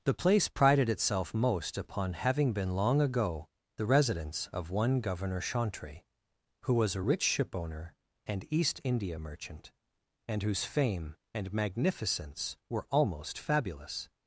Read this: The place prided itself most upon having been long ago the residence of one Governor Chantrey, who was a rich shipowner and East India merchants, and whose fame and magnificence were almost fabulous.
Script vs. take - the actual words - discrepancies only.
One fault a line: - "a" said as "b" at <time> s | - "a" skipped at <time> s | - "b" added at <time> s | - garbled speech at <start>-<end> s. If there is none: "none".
- "merchants" said as "merchant" at 9.2 s